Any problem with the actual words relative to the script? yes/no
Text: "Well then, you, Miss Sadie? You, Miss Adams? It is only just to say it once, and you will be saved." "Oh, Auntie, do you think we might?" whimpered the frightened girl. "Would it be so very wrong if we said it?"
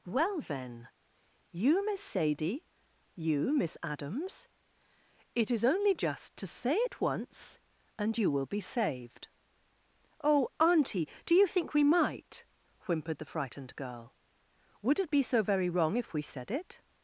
no